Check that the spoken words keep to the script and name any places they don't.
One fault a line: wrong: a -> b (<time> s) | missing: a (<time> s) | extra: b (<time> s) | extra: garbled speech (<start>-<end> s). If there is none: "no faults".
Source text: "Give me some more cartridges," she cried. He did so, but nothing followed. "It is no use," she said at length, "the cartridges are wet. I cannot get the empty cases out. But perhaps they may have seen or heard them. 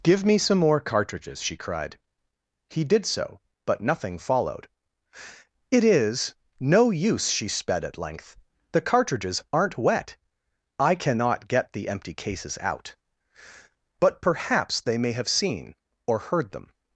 wrong: said -> sped (7.5 s)
wrong: are -> aren't (9.5 s)